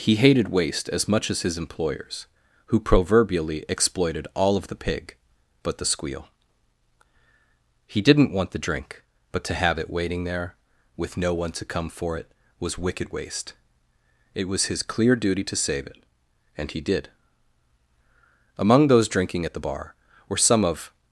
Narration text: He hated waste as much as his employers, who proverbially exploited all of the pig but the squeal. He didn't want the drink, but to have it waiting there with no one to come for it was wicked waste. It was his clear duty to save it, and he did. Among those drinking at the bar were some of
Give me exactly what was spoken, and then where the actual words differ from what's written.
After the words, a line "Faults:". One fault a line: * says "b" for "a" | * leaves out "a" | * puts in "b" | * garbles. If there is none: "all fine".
He hated waste as much as his employers, who proverbially exploited all of the pig but the squeal. He didn't want the drink, but to have it waiting there with no one to come for it was wicked waste. It was his clear duty to save it, and he did. Among those drinking at the bar were some of
Faults:
all fine